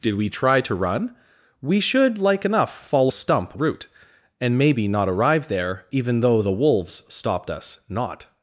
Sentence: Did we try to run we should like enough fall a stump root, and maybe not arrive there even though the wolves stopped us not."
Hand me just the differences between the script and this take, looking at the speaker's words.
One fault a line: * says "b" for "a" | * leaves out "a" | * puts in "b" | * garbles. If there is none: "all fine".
all fine